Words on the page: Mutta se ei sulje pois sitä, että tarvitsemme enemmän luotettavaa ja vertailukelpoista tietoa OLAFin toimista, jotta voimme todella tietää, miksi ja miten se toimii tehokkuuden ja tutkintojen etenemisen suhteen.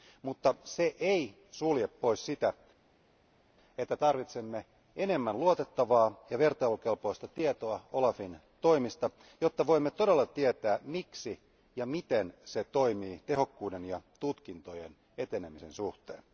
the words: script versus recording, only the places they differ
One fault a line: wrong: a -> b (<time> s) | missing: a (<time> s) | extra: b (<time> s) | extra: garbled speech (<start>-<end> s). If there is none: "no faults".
no faults